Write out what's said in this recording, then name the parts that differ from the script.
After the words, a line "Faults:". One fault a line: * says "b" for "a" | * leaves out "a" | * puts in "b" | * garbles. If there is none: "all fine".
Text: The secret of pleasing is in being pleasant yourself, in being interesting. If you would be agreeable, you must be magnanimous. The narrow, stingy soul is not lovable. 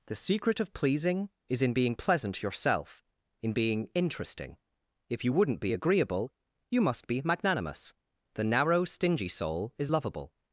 The secret of pleasing is in being pleasant yourself, in being interesting. If you wouldn't be agreeable, you must be magnanimous. The narrow, stingy soul is lovable.
Faults:
* says "wouldn't" for "would"
* leaves out "not"